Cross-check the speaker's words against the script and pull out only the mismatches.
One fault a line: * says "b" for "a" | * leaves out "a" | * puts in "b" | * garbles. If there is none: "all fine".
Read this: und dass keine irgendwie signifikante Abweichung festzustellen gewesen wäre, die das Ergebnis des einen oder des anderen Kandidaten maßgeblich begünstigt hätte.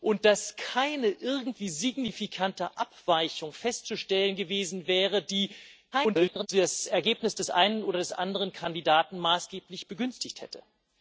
* garbles